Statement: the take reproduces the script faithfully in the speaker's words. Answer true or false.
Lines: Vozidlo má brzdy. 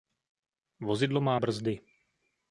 true